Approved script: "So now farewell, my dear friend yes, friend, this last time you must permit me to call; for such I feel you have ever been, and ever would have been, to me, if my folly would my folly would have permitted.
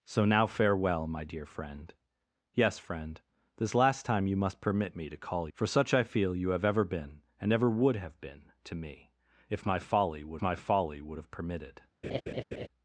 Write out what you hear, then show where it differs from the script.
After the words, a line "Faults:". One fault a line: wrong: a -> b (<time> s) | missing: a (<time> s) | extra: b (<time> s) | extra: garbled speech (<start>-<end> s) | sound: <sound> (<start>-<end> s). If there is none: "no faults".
"So now farewell, my dear friend yes, friend, this last time you must permit me to call; for such I feel you have ever been, and ever would have been, to me, if my folly would my folly would have permitted.
Faults:
sound: laugh (12.0-12.7 s)